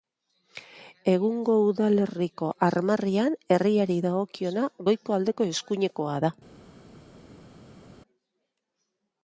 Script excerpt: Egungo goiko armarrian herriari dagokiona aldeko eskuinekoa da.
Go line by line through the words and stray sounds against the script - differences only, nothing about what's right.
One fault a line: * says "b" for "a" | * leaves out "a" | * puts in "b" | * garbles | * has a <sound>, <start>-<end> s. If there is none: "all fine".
* says "udalerriko" for "goiko"
* puts in "goiko"